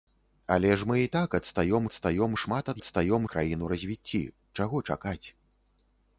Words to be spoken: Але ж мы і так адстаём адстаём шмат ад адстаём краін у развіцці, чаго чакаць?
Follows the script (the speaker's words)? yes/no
yes